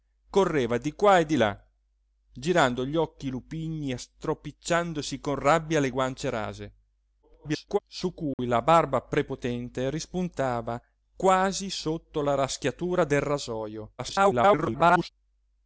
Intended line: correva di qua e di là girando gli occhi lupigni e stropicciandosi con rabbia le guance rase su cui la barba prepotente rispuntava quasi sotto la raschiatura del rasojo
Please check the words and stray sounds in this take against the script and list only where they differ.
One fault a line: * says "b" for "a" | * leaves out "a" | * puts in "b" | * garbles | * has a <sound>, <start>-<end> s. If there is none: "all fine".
* garbles
* has a dropout, 8.3-8.4 s
* garbles